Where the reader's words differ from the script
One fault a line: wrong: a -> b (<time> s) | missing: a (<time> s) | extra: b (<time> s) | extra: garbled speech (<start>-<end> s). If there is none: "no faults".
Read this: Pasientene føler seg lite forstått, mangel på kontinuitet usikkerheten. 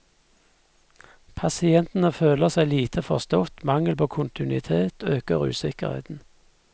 extra: øker (5.0 s)